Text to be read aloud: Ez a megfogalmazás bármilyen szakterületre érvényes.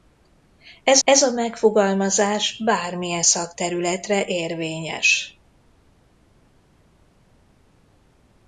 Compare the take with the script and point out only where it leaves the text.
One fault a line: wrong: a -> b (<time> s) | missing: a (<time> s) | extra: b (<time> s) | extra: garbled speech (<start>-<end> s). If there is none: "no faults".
extra: ez (1.0 s)